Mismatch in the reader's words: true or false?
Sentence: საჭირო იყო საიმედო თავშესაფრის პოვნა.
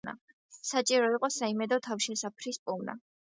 false